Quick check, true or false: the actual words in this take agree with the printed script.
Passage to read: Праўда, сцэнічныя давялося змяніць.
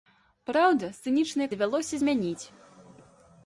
true